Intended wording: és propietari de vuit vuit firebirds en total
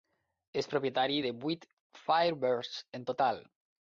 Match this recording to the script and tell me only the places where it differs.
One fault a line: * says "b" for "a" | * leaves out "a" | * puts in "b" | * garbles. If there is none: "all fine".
* leaves out "vuit"